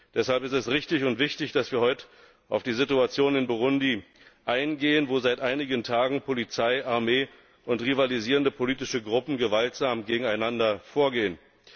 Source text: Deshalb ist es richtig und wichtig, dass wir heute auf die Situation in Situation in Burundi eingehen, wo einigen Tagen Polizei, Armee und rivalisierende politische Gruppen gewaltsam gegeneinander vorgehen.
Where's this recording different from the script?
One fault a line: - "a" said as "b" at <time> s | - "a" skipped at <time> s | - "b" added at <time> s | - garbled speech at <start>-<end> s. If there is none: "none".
- "Situation in" skipped at 3.5 s
- "seit" added at 5.2 s